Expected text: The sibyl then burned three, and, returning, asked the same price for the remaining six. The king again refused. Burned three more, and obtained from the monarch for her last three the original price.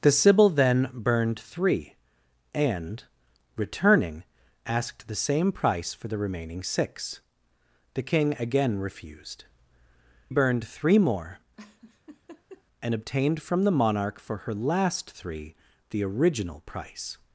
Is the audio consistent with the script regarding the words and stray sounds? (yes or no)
no